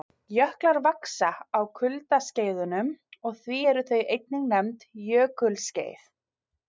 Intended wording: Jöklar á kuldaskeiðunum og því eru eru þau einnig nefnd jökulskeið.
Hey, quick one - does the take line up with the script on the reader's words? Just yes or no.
no